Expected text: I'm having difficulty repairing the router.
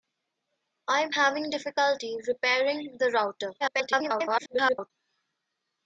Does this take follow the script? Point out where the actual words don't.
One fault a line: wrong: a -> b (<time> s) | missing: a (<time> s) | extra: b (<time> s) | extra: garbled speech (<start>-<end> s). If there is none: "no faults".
extra: garbled speech (3.6-4.9 s)